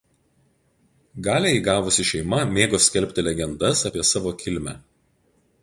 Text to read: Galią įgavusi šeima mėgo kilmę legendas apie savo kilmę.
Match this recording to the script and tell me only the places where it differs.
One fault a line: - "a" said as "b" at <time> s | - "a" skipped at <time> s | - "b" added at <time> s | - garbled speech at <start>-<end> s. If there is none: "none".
- "kilmę" said as "skelbti" at 2.9 s